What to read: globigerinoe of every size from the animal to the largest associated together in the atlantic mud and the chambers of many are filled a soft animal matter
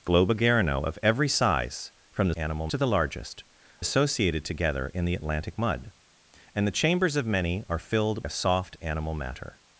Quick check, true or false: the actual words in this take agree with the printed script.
true